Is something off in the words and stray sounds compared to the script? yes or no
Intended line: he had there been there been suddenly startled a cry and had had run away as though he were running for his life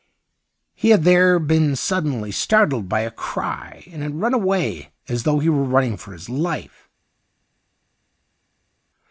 yes